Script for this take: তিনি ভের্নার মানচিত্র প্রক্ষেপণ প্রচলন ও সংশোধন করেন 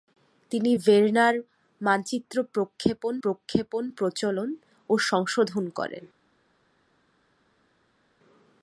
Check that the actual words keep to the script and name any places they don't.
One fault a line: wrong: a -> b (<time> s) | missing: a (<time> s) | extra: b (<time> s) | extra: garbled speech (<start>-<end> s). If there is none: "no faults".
extra: প্রক্ষেপণ (3.2 s)